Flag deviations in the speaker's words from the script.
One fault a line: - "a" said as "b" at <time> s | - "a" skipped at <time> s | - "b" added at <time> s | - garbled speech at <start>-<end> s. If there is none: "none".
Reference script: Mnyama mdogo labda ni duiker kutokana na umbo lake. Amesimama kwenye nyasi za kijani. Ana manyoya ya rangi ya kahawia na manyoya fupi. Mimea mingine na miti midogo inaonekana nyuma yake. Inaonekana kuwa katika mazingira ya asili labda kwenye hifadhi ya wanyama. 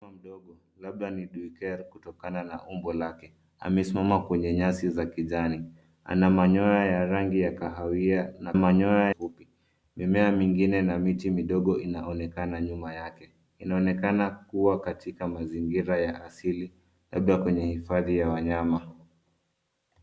none